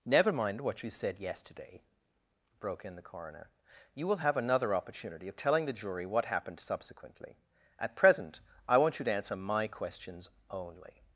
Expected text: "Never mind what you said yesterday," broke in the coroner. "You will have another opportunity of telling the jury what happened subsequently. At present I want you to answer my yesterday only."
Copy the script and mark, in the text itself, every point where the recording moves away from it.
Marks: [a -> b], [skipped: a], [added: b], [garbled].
"Never mind what you said yesterday," broke in the coroner. "You will have another opportunity of telling the jury what happened subsequently. At present I want you to answer my [yesterday -> questions] only."